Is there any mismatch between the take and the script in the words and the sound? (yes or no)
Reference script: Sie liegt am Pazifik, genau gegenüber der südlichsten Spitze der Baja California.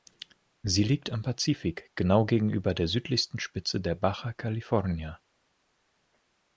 no